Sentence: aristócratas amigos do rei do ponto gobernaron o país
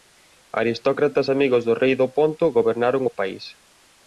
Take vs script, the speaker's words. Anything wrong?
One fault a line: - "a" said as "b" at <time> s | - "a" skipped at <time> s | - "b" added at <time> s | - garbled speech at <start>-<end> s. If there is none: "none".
none